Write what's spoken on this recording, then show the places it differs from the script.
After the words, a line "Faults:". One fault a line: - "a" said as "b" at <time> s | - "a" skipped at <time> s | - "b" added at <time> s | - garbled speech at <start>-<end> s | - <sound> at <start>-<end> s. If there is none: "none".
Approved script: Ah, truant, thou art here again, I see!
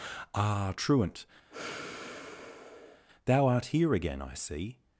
Ah, truant, thou art here again, I see!
Faults:
- sigh at 1.5-3.1 s